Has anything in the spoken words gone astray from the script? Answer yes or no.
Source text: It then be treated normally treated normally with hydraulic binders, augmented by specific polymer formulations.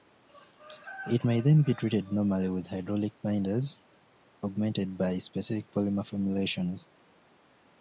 yes